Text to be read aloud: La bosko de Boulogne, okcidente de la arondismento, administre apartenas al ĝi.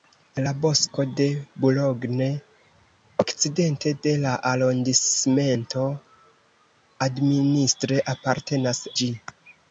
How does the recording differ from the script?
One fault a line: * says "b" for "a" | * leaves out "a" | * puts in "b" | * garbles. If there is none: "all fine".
* leaves out "al"